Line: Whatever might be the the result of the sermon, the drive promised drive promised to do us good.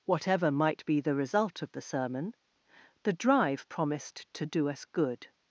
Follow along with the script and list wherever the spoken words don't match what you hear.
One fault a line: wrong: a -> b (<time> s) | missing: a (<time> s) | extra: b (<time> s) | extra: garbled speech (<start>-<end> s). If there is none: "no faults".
missing: the (1.1 s)
missing: drive promised (4.3 s)